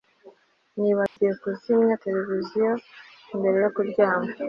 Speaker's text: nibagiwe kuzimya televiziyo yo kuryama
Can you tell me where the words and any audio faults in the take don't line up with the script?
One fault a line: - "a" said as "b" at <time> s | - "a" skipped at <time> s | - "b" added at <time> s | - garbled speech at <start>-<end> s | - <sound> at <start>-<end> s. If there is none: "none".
- dropout at 1.1-1.2 s
- "mbere" added at 3.4 s